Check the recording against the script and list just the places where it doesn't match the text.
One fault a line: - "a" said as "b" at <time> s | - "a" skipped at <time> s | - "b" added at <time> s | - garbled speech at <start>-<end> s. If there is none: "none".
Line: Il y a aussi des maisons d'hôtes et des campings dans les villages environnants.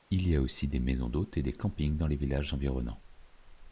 none